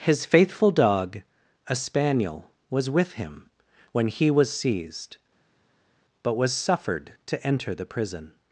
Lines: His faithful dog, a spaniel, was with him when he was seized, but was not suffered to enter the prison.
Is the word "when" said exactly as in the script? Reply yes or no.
yes